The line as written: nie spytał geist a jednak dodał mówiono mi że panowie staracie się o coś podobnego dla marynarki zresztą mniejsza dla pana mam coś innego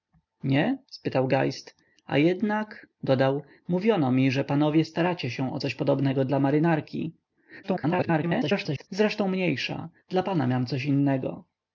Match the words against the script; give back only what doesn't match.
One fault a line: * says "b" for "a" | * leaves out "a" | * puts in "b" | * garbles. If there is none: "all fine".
* garbles